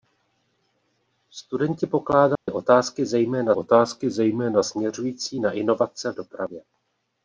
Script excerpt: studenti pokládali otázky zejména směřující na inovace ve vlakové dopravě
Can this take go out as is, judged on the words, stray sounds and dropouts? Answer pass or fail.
fail